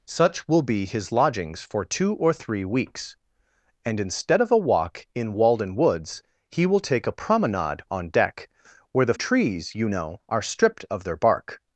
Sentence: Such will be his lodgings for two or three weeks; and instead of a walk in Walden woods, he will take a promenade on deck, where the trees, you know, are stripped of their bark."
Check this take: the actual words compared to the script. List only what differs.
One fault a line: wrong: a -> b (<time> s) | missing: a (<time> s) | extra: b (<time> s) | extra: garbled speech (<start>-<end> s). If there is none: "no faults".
no faults